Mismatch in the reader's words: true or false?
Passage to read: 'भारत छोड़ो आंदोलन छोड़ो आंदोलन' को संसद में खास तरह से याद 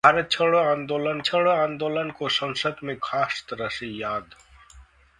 false